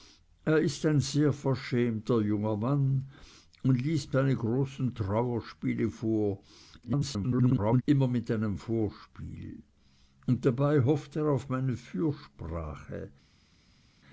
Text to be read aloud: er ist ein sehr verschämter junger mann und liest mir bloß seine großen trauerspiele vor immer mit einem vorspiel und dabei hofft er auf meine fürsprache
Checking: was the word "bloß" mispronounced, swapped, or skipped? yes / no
yes